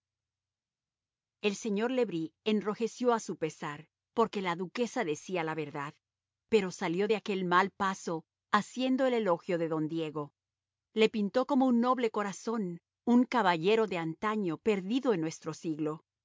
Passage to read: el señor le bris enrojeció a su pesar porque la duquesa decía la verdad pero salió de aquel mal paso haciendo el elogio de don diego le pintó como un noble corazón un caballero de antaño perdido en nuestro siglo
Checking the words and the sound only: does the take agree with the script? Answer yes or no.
yes